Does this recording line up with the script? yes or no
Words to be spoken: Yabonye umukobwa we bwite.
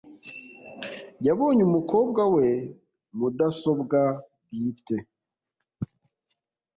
no